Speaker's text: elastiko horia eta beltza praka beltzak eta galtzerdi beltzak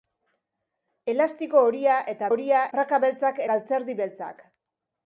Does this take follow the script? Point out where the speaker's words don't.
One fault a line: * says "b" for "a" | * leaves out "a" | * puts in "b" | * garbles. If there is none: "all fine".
* says "horia" for "beltza"
* leaves out "eta"